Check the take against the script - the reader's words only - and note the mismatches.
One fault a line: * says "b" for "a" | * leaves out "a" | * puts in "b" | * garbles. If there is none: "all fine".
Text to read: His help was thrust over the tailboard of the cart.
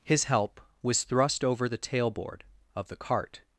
all fine